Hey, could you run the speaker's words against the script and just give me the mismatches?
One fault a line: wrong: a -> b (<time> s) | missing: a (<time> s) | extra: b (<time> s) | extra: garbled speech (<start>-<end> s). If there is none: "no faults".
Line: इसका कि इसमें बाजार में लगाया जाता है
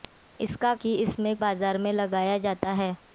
no faults